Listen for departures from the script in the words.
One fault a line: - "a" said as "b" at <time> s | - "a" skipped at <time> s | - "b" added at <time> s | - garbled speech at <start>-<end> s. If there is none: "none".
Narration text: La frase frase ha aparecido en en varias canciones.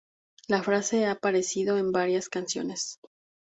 - "frase" skipped at 1.1 s
- "en" skipped at 1.9 s